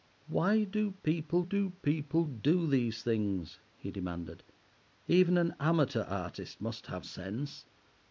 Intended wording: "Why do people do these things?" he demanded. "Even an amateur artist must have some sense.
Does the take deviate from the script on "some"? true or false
true